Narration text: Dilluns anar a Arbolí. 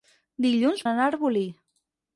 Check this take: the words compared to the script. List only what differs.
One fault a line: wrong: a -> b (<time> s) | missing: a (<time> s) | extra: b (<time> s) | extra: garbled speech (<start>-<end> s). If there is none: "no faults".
no faults